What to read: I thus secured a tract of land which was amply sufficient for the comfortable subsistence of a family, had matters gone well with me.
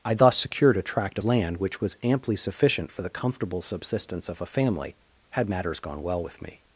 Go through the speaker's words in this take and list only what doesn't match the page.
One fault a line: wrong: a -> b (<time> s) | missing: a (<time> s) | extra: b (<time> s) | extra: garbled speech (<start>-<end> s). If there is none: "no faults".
missing: of (1.2 s)